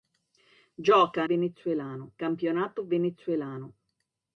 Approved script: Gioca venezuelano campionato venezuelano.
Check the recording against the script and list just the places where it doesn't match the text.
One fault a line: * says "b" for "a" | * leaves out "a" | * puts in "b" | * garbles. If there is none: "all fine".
all fine